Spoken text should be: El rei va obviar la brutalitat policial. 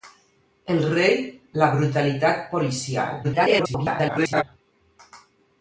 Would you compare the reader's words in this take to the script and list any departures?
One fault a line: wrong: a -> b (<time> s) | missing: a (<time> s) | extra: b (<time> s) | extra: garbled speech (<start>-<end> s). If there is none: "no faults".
missing: va obviar (1.2 s)
extra: garbled speech (3.2-4.4 s)